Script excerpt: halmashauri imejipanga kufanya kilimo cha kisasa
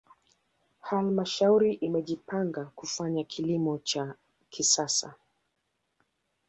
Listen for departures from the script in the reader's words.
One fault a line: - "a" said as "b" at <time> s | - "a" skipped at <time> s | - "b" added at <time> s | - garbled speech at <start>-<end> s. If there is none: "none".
none